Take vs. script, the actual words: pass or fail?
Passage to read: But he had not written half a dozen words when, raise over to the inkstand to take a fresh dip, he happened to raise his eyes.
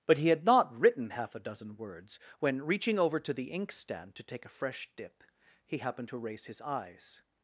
fail